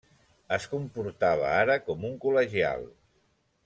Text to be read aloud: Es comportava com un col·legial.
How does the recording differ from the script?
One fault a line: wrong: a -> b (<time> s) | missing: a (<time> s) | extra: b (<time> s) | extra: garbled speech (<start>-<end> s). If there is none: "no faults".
extra: ara (1.6 s)